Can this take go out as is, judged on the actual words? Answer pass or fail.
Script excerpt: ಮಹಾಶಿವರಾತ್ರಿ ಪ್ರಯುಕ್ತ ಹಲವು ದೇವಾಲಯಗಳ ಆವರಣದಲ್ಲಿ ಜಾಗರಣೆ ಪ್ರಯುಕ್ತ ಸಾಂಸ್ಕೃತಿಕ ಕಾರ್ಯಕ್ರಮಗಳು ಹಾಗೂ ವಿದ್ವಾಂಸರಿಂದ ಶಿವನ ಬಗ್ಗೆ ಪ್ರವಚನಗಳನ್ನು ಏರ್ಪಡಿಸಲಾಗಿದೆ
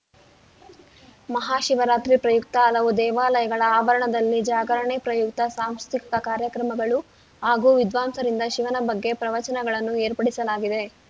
pass